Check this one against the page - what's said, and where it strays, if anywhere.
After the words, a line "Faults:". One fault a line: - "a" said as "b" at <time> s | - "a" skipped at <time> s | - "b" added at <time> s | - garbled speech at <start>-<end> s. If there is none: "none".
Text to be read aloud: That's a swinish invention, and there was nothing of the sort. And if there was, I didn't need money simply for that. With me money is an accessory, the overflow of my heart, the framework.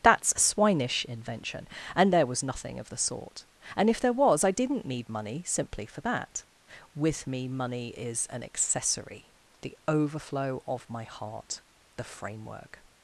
That's a swinish invention, and there was nothing of the sort. And if there was, I didn't need money simply for that. With me money is an accessory, the overflow of my heart, the framework.
Faults:
none